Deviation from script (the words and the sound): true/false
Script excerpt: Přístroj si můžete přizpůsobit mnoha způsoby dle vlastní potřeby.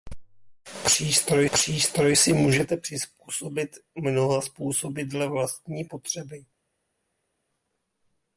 true